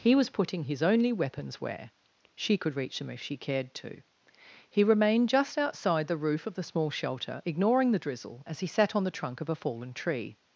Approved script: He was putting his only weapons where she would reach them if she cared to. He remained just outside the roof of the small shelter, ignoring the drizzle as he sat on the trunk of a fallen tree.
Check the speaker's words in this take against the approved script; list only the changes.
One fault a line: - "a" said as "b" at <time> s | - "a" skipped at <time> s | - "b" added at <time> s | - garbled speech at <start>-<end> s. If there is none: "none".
- "would" said as "could" at 2.6 s